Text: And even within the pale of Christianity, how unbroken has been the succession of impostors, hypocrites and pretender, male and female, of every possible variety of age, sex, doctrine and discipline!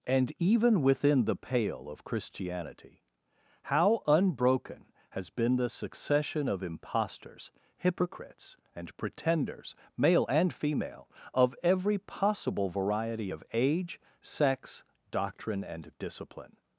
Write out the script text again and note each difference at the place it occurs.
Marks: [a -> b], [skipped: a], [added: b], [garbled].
And even within the pale of Christianity, how unbroken has been the succession of impostors, hypocrites and [pretender, -> pretenders] male and female, of every possible variety of age, sex, doctrine and discipline!